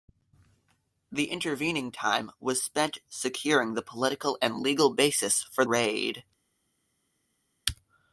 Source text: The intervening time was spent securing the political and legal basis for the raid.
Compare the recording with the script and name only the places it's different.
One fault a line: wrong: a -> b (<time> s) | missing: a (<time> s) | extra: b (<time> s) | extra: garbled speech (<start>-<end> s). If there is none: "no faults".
missing: the (5.6 s)